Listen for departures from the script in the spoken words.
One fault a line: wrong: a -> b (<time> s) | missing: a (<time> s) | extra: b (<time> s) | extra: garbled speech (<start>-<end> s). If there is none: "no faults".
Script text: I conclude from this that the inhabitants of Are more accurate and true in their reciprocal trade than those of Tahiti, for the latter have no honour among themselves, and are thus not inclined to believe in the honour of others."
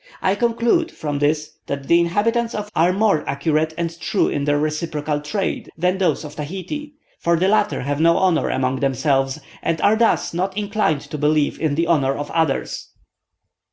no faults